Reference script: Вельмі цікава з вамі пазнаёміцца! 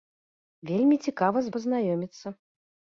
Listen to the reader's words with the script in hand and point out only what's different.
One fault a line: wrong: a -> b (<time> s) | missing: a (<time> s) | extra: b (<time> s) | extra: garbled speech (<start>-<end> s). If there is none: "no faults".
missing: вамі (1.5 s)